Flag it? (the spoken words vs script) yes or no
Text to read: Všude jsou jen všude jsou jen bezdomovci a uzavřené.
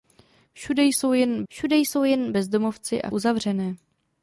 no